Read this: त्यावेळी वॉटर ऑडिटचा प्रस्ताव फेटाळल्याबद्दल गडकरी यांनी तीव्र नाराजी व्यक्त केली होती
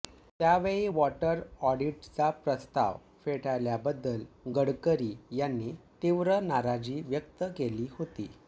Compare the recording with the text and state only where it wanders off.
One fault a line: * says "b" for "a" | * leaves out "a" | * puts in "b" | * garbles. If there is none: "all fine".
all fine